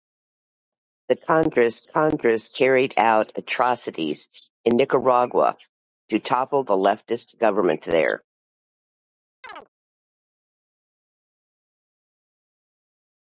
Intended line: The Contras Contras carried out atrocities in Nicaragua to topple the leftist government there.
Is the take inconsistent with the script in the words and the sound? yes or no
yes